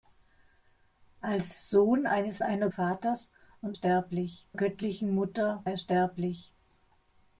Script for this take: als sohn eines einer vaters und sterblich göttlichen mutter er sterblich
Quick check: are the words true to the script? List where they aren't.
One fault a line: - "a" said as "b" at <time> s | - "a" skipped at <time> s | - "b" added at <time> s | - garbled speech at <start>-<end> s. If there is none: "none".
none